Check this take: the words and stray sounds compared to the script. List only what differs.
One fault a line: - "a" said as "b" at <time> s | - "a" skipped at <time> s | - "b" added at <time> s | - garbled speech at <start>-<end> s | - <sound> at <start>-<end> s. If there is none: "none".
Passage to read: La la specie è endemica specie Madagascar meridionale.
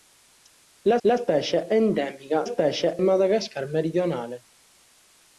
none